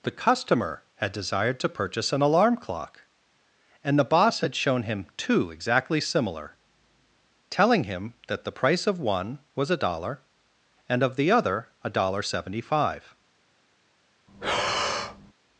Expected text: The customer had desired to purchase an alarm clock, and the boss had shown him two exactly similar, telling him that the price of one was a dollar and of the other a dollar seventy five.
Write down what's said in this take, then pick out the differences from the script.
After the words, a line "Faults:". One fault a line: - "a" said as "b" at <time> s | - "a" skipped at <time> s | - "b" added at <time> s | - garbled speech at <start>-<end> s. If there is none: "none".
The customer had desired to purchase an alarm clock, and the boss had shown him two exactly similar, telling him that the price of one was a dollar and of the other a dollar seventy five.
Faults:
none